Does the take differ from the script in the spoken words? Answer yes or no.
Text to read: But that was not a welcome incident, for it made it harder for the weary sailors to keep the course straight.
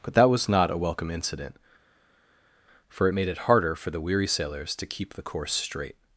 no